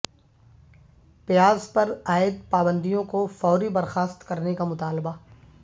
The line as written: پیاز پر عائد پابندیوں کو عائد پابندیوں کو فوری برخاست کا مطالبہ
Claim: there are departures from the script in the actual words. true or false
true